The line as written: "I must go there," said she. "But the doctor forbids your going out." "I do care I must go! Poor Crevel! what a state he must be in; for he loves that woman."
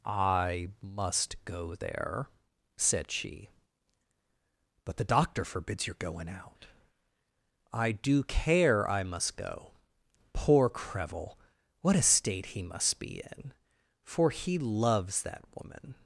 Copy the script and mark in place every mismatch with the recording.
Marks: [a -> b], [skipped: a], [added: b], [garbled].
"I must go there," said she. "But the doctor forbids your going out." "I do care I must go! Poor Crevel! what a state he must be in; for he loves that woman."